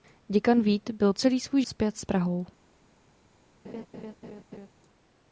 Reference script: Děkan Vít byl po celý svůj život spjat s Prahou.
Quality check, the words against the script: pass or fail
fail